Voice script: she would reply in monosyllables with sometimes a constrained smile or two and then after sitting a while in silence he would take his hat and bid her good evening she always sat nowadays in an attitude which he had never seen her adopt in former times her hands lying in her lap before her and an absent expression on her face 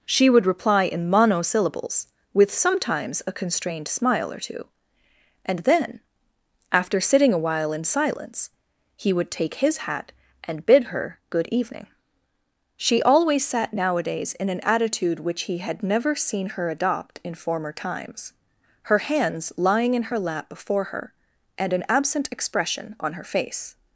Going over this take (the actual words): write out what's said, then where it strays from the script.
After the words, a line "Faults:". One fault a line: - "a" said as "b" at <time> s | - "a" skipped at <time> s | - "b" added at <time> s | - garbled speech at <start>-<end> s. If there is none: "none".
she would reply in monosyllables with sometimes a constrained smile or two and then after sitting a while in silence he would take his hat and bid her good evening she always sat nowadays in an attitude which he had never seen her adopt in former times her hands lying in her lap before her and an absent expression on her face
Faults:
none